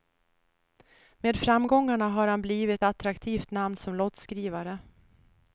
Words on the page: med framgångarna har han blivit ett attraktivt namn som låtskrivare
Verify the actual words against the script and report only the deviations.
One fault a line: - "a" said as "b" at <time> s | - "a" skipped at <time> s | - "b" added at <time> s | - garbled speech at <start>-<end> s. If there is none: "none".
- "ett" skipped at 2.9 s